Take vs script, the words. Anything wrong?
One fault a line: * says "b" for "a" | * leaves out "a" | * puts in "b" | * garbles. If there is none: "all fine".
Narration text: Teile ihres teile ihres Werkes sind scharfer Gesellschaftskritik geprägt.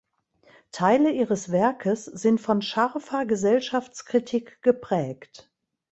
* leaves out "teile ihres"
* puts in "von"